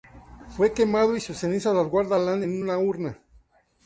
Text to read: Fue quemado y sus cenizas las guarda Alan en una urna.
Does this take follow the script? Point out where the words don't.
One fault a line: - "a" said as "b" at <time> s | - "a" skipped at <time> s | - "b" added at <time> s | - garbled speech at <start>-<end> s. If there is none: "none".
none